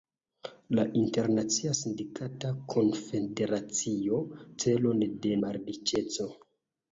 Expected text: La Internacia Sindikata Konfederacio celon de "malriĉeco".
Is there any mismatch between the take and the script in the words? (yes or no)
no